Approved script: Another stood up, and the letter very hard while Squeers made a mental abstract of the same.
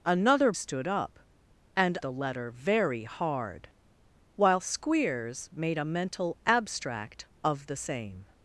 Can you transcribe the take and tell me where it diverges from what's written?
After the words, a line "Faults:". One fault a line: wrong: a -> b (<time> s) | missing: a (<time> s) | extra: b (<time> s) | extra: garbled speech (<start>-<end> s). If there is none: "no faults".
Another stood up, and the letter very hard while Squeers made a mental abstract of the same.
Faults:
no faults